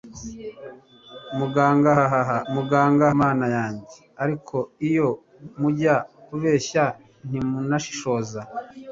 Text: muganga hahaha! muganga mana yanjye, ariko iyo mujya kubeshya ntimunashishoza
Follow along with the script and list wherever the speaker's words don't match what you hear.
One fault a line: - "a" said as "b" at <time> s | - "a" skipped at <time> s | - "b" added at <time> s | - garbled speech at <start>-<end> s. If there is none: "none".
none